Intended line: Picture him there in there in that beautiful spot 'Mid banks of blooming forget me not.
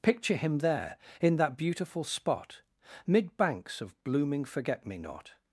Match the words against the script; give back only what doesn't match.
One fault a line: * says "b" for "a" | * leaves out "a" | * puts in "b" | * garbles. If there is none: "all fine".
* leaves out "there in"